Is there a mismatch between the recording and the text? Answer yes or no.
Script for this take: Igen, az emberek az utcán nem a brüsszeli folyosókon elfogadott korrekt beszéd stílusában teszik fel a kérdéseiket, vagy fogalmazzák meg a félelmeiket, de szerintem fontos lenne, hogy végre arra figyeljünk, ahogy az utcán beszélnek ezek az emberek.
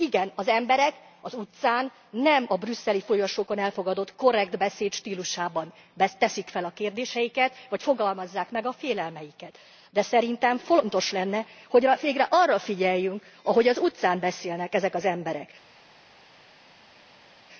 no